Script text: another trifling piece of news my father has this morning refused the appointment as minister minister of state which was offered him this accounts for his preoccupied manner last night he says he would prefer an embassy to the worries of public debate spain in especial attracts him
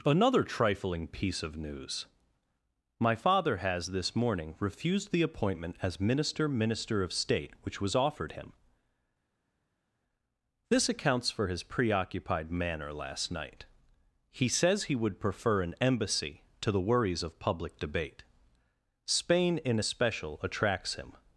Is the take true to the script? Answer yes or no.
yes